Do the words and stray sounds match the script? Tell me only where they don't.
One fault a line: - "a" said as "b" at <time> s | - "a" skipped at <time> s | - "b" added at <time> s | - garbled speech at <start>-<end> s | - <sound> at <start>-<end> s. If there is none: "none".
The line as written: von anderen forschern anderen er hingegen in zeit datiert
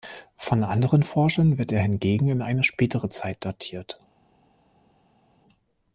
- "anderen" said as "wird" at 1.6 s
- "eine spätere" added at 2.4 s